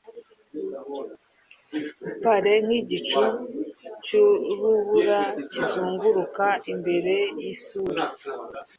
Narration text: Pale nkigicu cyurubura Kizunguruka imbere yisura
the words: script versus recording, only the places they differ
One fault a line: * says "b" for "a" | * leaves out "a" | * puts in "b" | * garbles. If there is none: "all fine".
all fine